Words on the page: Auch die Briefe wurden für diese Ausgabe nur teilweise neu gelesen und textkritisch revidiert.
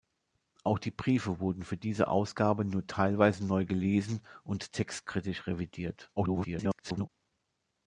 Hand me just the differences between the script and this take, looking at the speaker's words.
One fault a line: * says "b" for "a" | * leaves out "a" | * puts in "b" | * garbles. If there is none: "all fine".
* garbles